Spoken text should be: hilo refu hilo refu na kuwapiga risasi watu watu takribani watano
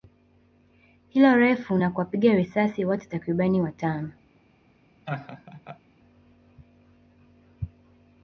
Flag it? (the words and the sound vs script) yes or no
yes